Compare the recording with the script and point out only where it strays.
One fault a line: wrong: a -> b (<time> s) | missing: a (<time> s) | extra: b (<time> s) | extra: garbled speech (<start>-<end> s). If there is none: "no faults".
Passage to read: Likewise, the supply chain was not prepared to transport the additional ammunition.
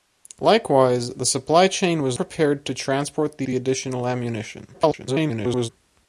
missing: not (2.2 s)
extra: the (3.4 s)
extra: garbled speech (4.7-5.7 s)